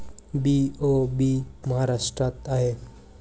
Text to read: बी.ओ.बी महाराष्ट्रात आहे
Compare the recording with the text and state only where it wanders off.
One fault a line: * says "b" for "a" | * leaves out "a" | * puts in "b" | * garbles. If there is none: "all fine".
all fine